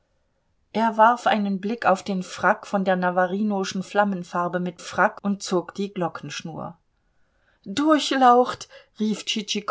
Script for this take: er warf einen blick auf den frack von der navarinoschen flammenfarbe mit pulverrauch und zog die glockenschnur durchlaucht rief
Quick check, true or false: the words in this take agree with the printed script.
false